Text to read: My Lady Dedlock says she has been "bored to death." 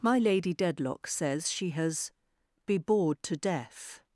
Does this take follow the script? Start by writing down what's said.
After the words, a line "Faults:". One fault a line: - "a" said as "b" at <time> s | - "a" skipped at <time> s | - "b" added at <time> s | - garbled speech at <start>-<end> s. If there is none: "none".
My Lady Dedlock says she has be "bored to death."
Faults:
- "been" said as "be" at 2.6 s